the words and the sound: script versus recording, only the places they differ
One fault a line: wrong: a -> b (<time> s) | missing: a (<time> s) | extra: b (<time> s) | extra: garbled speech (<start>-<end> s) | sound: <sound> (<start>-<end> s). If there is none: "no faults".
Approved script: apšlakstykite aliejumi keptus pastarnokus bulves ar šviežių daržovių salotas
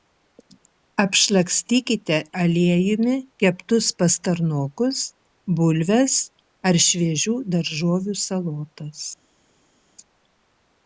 no faults